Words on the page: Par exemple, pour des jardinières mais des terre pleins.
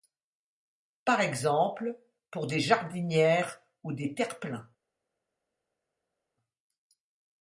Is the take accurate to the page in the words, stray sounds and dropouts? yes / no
no